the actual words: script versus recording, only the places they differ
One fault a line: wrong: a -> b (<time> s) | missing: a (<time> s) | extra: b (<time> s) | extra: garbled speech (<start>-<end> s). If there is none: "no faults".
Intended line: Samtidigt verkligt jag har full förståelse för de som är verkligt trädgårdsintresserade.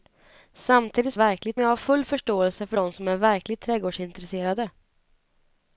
no faults